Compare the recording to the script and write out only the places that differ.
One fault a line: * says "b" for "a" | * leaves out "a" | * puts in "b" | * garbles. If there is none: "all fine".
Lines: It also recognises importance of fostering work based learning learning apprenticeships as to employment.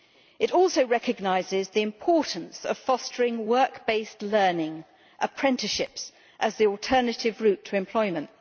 * puts in "the"
* leaves out "learning"
* puts in "the alternative route"